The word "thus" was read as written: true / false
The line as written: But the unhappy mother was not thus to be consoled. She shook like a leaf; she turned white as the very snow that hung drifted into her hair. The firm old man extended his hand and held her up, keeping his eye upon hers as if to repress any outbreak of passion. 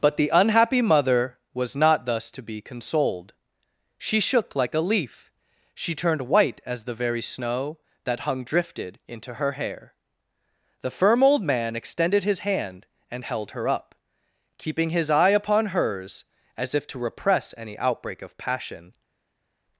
true